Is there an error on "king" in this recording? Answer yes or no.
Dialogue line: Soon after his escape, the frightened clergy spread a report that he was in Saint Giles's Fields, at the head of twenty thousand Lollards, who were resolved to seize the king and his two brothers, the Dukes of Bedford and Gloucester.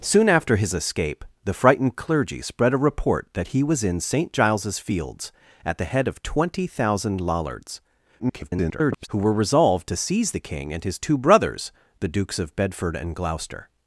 no